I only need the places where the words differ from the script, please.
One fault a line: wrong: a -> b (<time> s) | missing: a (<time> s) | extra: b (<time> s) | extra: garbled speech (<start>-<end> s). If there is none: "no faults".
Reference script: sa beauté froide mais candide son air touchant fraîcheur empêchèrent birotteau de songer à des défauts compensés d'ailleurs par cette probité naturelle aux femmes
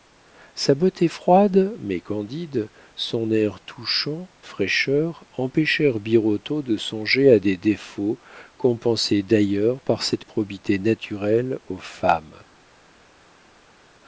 no faults